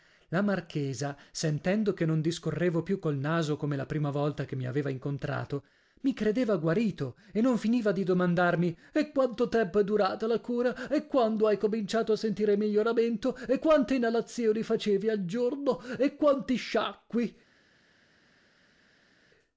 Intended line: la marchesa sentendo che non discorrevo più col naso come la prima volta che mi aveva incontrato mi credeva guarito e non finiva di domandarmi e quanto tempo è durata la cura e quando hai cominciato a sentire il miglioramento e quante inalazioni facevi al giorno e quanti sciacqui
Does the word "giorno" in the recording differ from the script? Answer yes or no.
no